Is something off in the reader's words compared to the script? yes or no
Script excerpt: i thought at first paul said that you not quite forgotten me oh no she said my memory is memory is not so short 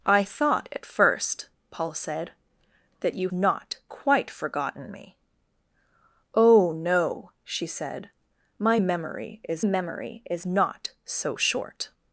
no